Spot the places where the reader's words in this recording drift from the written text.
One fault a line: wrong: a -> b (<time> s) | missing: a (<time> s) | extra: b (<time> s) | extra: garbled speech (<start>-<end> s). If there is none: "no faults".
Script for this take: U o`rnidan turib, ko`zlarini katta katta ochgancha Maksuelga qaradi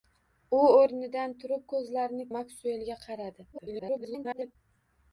missing: katta katta ochgancha (2.3 s)
extra: garbled speech (3.5-4.6 s)